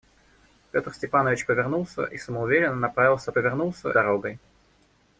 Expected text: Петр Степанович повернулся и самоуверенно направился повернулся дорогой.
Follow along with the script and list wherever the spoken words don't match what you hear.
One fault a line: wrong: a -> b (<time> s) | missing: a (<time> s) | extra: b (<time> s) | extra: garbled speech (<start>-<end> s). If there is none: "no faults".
no faults